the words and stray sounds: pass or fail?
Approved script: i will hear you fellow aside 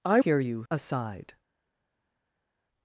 fail